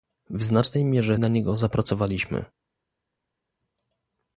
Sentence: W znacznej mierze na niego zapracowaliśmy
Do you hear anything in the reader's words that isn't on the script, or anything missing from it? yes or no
no